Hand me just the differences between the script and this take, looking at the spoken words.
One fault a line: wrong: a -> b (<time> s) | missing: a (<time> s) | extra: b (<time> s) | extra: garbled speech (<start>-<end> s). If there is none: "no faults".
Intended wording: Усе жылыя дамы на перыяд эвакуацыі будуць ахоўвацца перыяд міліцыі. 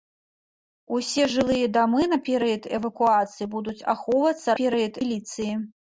no faults